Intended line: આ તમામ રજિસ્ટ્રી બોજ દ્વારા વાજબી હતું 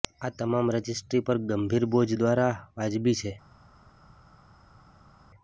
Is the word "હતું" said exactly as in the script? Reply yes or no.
no